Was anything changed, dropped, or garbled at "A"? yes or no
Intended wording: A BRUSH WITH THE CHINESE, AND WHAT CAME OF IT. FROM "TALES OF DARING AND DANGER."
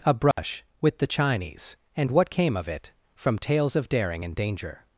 no